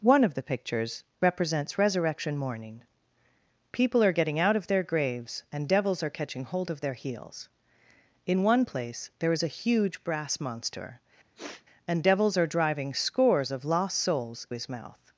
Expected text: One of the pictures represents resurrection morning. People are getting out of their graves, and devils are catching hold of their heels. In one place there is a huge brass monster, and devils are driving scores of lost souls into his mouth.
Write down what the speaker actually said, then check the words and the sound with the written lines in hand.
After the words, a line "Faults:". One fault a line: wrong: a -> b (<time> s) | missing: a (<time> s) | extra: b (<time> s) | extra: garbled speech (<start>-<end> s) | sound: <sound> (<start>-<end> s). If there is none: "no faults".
One of the pictures represents resurrection morning. People are getting out of their graves, and devils are catching hold of their heels. In one place there is a huge brass monster, and devils are driving scores of lost souls his mouth.
Faults:
sound: sniff (11.4-11.6 s)
missing: into (14.5 s)